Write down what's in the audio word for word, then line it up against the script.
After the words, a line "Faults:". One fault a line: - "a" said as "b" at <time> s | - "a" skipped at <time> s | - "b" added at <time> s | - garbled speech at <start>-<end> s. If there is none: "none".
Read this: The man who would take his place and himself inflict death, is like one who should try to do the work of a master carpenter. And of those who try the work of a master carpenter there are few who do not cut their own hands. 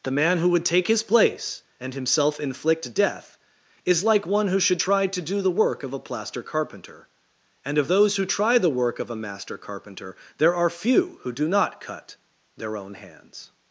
The man who would take his place and himself inflict death, is like one who should try to do the work of a plaster carpenter. And of those who try the work of a master carpenter there are few who do not cut their own hands.
Faults:
- "master" said as "plaster" at 6.0 s